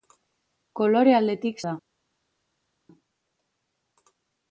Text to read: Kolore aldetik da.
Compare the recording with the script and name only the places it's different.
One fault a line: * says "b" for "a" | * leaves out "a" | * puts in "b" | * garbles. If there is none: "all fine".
all fine